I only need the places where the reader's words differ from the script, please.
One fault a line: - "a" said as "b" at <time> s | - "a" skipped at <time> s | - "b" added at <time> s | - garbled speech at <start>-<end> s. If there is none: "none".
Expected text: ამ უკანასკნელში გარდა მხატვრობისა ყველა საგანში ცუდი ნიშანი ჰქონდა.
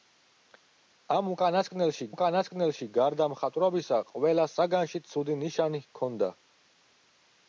- "უკანასკნელში" added at 2.1 s